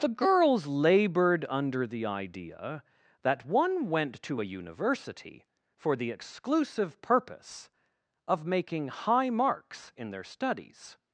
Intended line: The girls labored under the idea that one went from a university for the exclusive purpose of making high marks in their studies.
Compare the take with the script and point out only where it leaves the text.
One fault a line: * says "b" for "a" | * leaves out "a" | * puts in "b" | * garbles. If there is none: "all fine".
* says "to" for "from"